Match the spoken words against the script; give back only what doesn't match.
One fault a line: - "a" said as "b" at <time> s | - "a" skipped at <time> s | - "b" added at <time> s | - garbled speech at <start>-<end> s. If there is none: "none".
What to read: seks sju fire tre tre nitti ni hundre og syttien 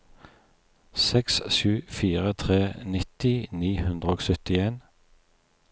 - "tre" skipped at 2.6 s